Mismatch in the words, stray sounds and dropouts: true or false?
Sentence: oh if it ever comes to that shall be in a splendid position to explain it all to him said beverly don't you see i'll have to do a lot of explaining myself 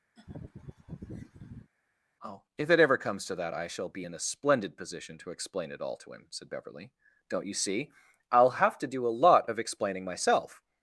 true